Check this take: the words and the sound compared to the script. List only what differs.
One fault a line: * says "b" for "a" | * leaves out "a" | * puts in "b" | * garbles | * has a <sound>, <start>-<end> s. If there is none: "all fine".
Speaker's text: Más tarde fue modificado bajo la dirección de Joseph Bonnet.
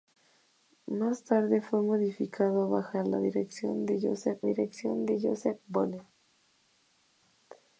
* puts in "dirección de Joseph"